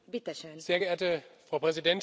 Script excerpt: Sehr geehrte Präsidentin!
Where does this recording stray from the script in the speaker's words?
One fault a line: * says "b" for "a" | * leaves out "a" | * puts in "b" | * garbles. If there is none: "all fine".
* puts in "Frau"